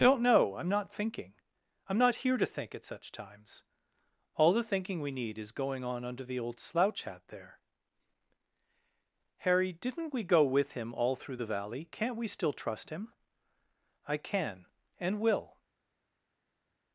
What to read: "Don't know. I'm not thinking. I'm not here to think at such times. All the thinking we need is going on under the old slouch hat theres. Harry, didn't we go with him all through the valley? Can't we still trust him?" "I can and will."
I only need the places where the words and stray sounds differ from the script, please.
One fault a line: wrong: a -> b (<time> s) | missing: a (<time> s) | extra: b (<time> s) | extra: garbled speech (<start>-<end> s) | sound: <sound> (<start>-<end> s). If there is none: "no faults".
wrong: theres -> there (7.3 s)